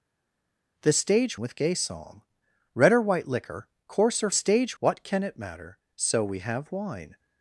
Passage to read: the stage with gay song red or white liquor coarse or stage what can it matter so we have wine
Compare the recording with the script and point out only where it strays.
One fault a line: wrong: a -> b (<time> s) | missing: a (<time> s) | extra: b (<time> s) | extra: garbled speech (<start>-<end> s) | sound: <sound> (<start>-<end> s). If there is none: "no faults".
no faults